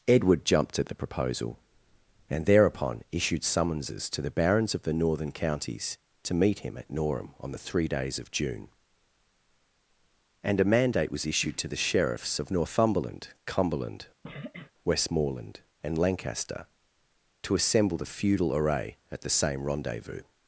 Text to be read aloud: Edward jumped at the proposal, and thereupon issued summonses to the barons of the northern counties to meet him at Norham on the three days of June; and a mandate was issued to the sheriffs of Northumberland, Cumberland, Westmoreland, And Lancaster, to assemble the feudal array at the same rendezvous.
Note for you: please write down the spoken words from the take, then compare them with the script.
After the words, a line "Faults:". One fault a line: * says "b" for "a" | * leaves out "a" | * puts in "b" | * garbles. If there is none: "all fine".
Edward jumped at the proposal, and thereupon issued summonses to the barons of the northern counties to meet him at Norham on the three days of June; and a mandate was issued to the sheriffs of Northumberland, Cumberland, Westmoreland, And Lancaster, to assemble the feudal array at the same rendezvous.
Faults:
all fine